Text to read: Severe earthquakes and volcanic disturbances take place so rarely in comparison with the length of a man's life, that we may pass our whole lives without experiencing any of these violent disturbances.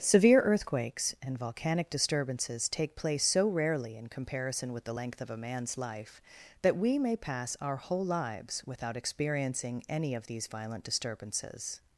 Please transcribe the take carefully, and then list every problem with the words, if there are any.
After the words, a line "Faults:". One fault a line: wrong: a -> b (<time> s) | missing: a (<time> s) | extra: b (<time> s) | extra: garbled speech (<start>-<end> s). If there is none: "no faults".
Severe earthquakes and volcanic disturbances take place so rarely in comparison with the length of a man's life, that we may pass our whole lives without experiencing any of these violent disturbances.
Faults:
no faults